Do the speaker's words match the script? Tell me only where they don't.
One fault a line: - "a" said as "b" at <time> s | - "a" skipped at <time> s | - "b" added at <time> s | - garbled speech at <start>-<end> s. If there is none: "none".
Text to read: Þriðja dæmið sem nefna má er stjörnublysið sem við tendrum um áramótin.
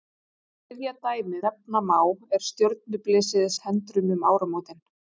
- "sem" skipped at 1.4 s
- "sem" skipped at 3.5 s